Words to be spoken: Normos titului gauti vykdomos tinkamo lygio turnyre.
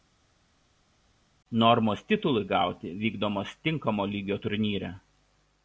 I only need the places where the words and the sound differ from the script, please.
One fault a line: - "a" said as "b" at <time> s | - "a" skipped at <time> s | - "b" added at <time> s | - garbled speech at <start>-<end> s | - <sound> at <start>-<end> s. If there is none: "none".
none